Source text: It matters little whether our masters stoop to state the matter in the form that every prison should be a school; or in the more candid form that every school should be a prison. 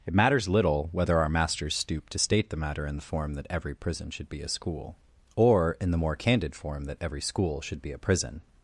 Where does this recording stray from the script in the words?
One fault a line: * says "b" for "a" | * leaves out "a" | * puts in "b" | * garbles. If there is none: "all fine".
all fine